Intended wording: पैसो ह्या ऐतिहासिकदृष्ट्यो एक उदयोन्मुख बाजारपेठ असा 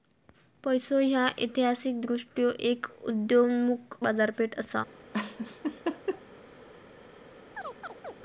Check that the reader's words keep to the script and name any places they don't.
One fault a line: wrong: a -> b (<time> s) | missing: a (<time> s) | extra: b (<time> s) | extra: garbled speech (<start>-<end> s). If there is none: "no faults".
no faults